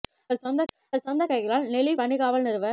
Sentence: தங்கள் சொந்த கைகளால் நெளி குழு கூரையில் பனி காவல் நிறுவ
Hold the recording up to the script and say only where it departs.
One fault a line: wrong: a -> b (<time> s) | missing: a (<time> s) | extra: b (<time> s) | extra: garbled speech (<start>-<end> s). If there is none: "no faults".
extra: தங்கள் சொந்த (0.7 s)
missing: குழு கூரையில் (1.9 s)